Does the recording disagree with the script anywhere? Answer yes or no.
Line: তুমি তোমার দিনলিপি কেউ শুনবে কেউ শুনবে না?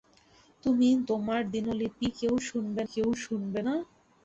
no